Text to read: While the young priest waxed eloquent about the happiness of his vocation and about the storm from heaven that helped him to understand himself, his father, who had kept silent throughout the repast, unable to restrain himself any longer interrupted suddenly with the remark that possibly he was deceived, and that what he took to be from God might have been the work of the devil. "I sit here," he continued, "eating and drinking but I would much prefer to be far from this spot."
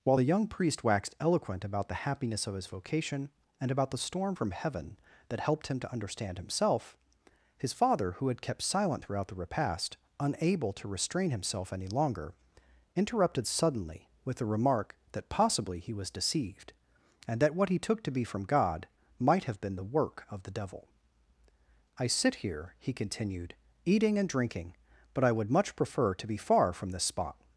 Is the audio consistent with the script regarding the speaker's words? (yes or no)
yes